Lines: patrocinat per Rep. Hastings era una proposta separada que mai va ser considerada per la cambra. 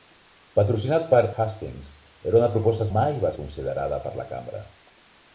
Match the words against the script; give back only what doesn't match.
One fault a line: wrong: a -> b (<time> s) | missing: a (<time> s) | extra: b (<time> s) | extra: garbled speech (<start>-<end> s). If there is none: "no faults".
missing: Rep (1.2 s)
missing: separada que (2.9 s)
missing: ser (3.3 s)